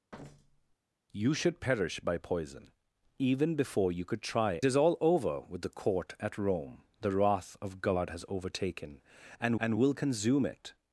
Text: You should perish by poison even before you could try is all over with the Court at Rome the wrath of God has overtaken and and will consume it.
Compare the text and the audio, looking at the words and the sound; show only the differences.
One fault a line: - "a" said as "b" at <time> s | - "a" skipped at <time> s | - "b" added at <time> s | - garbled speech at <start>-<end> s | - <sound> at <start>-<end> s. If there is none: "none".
- thud at 0.1-0.8 s